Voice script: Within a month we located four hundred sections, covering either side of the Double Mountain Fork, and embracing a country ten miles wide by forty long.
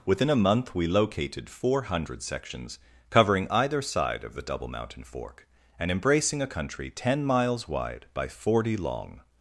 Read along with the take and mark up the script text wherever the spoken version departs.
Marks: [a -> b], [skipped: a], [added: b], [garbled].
Within a month we located four hundred sections, covering either side of the Double Mountain Fork, and embracing a country ten miles wide by forty long.